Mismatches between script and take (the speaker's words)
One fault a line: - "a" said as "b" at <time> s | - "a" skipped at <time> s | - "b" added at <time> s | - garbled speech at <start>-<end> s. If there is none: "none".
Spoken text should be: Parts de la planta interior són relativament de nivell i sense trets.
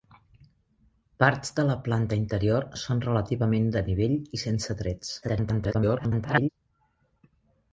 - garbled speech at 5.2-6.5 s